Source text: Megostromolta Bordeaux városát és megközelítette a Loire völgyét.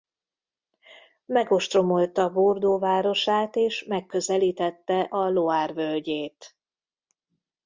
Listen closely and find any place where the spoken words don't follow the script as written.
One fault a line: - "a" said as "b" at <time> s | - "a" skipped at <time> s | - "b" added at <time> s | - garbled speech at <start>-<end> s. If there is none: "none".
none